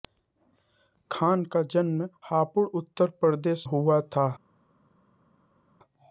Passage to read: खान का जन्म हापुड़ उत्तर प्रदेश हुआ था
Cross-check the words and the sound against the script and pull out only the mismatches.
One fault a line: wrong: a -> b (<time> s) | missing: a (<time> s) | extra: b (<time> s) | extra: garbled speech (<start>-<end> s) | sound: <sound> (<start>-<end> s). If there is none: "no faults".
no faults